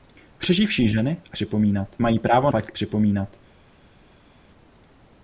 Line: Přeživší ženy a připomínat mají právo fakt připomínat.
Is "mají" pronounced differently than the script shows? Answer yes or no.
no